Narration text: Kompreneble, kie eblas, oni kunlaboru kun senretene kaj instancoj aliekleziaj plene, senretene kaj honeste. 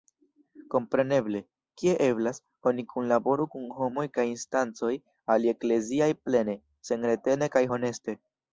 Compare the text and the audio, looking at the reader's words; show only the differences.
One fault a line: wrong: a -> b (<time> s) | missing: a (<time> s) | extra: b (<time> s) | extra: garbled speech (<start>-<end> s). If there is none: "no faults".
wrong: senretene -> homoj (3.8 s)